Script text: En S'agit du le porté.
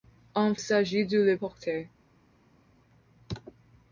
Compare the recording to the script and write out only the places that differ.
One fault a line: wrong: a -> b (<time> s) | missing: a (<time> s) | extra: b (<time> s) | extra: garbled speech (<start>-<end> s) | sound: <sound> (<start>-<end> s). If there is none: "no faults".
no faults